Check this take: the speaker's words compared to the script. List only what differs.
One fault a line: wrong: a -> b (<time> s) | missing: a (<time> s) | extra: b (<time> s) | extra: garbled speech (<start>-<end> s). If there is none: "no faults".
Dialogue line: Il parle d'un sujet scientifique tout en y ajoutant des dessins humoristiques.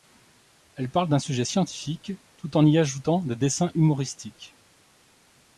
wrong: Il -> Elle (0.8 s)